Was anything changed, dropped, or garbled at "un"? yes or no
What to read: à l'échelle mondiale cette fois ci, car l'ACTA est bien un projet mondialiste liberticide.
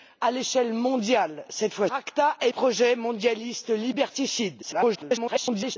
yes